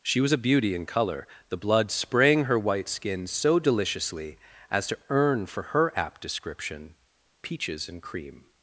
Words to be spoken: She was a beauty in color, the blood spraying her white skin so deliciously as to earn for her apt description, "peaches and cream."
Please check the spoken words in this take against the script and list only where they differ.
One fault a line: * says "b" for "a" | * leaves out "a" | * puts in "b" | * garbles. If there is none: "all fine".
all fine